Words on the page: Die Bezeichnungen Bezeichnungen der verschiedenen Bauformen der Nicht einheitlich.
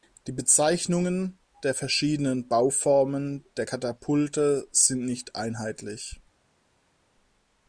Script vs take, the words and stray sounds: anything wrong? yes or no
yes